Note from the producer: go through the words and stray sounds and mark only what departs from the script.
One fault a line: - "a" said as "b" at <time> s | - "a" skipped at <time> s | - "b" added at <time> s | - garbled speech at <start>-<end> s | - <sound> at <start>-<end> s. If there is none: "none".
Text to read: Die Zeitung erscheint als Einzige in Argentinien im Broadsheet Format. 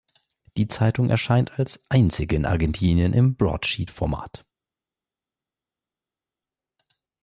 none